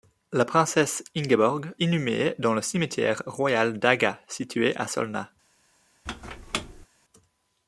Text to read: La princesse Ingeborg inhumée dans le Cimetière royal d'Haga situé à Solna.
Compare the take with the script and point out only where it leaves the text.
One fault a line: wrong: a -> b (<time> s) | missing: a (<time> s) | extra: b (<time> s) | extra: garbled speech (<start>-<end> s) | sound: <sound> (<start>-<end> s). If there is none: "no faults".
sound: squeak (6.1-6.9 s)